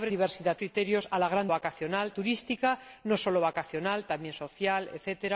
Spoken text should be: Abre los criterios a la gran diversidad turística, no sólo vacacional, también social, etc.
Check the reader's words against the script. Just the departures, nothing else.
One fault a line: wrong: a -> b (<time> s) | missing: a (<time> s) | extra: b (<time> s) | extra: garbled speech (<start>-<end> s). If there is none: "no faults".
wrong: los -> diversidad (0.1 s)
wrong: diversidad -> vacacional (1.5 s)